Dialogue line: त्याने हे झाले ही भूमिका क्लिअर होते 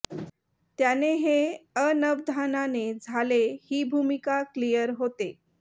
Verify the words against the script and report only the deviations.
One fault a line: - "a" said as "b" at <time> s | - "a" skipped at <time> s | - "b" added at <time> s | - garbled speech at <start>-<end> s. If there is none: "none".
- "अनवधानाने" added at 1.8 s